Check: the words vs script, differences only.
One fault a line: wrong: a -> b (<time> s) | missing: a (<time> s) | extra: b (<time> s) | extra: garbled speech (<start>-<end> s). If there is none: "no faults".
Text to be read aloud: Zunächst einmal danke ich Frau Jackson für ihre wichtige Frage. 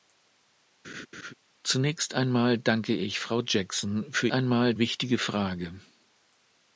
wrong: ihre -> einmal (4.3 s)